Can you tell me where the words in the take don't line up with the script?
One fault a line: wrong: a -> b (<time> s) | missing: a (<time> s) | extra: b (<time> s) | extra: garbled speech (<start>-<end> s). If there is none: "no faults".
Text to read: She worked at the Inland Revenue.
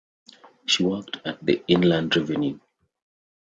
no faults